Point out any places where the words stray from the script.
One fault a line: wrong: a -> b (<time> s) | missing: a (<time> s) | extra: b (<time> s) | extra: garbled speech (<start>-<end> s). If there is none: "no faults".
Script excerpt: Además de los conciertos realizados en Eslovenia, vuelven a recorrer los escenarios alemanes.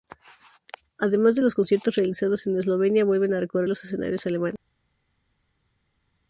no faults